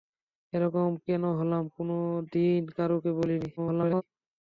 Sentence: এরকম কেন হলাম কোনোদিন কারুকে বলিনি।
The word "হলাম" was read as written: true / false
true